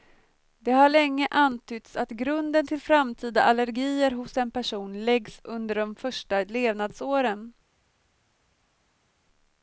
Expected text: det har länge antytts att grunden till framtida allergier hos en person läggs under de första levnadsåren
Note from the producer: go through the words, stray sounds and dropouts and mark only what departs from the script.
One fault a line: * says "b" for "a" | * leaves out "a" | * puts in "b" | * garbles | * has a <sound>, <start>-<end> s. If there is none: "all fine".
all fine